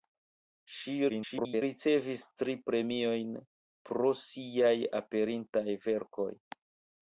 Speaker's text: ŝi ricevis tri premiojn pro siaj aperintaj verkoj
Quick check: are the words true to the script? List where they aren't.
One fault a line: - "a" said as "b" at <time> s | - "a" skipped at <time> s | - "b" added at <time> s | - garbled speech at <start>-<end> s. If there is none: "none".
- garbled speech at 1.1-1.6 s